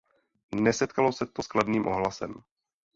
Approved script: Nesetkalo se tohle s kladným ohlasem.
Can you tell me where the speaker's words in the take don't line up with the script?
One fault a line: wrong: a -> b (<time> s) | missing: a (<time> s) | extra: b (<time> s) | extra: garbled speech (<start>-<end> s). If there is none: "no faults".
wrong: tohle -> to (1.2 s)